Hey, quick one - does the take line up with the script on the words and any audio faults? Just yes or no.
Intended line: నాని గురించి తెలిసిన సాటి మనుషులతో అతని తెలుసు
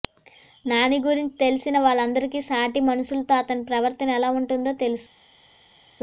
no